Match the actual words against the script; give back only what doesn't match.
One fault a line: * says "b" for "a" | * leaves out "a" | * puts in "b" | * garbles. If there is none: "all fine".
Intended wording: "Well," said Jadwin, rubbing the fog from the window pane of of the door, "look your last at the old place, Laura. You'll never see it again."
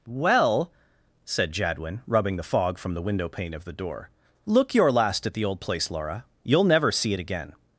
* leaves out "of"